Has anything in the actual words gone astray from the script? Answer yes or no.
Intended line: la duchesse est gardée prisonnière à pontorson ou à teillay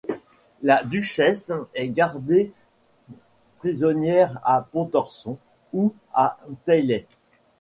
no